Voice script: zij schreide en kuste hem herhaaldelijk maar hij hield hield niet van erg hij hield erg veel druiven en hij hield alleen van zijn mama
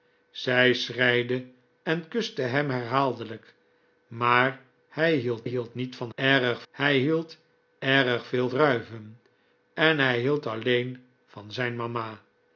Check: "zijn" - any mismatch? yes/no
no